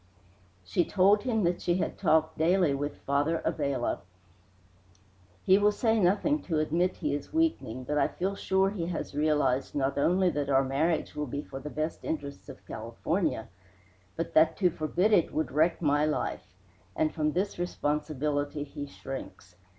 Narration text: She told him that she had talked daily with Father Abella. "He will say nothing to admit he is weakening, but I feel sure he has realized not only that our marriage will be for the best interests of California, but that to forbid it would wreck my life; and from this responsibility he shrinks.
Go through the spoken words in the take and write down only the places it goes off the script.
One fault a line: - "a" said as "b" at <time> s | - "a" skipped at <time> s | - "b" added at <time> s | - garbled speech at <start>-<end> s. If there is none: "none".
none